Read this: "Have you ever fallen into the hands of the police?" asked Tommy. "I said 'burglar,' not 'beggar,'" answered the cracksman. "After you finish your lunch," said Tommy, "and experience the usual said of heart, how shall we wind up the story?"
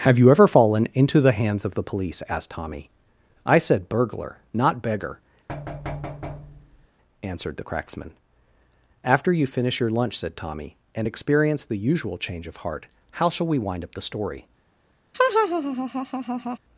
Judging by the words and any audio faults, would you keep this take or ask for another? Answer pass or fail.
fail